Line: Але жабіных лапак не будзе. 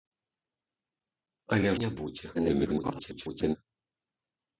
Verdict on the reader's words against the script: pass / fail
fail